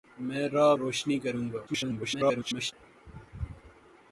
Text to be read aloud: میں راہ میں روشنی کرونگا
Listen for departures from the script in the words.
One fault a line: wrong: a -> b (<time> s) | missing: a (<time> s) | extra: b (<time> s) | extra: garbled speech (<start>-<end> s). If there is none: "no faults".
missing: میں (0.7 s)
extra: garbled speech (1.7-2.7 s)